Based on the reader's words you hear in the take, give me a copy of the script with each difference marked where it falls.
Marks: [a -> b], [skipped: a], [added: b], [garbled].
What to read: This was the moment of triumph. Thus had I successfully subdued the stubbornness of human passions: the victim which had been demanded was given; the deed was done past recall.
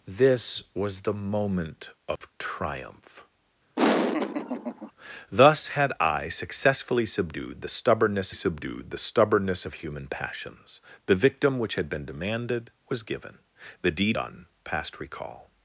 This was the moment of triumph. Thus had I successfully subdued the stubbornness [added: subdued the stubbornness] of human passions: the victim which had been demanded was given; the deed [skipped: was] done past recall.